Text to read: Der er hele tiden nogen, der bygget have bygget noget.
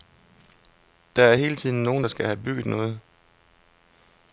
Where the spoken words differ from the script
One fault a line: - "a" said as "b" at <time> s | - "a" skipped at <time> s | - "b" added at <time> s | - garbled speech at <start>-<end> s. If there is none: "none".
- "bygget" said as "skal" at 2.1 s